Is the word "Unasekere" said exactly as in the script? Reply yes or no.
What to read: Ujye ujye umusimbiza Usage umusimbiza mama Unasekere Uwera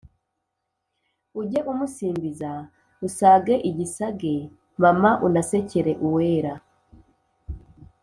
yes